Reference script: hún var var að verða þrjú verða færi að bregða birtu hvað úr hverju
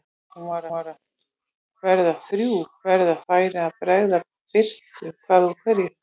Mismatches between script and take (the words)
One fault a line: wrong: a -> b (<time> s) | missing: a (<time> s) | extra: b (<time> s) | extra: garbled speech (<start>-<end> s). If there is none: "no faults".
no faults